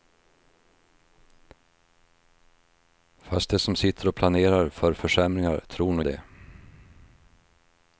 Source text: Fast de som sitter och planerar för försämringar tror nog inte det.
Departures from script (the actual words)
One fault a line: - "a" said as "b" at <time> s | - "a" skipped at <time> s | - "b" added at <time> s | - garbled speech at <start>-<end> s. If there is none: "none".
- "inte" skipped at 6.0 s